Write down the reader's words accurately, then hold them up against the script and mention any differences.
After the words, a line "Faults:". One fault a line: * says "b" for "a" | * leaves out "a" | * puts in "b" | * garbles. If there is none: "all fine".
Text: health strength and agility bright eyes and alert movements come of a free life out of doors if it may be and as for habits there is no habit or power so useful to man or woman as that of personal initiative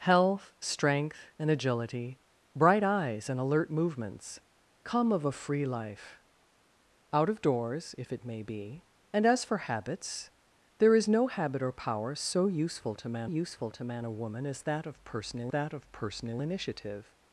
health strength and agility bright eyes and alert movements come of a free life out of doors if it may be and as for habits there is no habit or power so useful to man useful to man or woman as that of personal that of personal initiative
Faults:
* puts in "useful to man"
* puts in "that of personal"